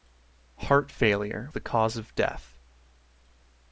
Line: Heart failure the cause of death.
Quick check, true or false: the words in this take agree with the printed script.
true